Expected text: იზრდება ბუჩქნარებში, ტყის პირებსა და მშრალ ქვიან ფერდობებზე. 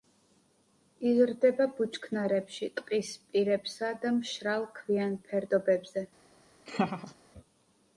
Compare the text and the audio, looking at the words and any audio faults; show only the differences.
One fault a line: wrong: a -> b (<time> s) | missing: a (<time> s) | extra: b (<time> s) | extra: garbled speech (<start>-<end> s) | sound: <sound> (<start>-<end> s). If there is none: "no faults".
sound: laugh (6.7-7.1 s)